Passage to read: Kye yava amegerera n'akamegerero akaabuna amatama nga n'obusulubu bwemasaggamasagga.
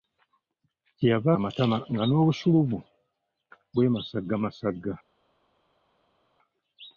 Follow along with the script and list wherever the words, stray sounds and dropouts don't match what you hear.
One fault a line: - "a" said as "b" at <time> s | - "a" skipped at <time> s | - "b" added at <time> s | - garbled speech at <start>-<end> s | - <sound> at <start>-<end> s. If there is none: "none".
- "amegerera n'akamegerero akaabuna" skipped at 1.3 s